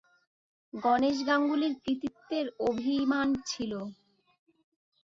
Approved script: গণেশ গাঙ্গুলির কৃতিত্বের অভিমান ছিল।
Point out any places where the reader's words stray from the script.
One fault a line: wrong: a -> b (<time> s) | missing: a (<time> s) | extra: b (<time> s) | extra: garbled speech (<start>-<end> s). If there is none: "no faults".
no faults